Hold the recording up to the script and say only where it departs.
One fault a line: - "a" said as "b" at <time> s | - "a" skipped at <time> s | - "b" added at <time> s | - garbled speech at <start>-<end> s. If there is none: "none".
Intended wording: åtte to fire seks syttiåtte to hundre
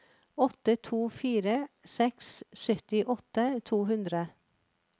none